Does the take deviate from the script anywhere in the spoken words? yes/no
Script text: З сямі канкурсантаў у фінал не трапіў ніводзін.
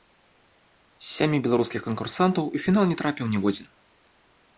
yes